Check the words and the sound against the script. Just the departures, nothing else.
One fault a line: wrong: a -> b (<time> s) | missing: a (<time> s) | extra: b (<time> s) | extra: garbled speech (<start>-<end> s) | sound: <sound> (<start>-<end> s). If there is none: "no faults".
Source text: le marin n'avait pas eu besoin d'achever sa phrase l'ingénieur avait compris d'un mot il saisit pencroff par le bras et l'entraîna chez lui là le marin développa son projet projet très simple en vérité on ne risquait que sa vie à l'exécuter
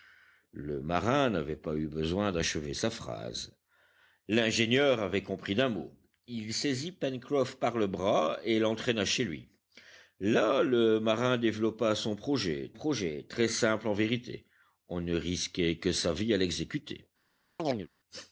sound: chirp (17.6-17.9 s)